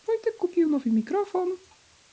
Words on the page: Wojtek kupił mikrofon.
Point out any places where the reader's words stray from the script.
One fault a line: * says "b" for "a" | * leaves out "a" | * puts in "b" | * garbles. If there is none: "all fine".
* puts in "nowy"